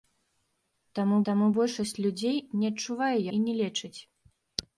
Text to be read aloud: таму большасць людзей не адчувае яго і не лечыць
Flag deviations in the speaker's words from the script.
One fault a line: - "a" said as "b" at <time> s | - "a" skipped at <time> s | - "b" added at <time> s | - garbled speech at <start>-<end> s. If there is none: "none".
- "таму" added at 1.3 s
- "яго" skipped at 3.2 s